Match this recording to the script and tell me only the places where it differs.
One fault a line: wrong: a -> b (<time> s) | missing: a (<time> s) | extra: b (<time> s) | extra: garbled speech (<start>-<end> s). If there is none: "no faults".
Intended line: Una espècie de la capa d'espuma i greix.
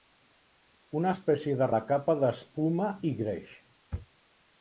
no faults